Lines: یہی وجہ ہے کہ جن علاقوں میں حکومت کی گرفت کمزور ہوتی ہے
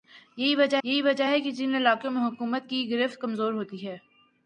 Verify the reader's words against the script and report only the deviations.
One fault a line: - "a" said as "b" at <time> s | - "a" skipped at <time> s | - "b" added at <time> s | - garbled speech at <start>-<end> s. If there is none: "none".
- "یہی وجہ" added at 0.8 s